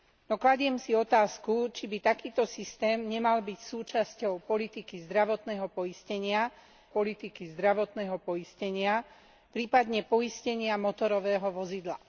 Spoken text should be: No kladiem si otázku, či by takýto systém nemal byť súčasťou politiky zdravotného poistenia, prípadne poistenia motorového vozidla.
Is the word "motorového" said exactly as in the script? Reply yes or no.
yes